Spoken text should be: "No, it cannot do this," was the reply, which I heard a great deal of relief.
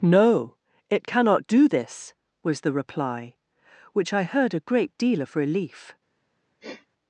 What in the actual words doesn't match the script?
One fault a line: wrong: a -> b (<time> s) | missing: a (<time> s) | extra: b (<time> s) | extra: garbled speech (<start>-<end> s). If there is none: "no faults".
no faults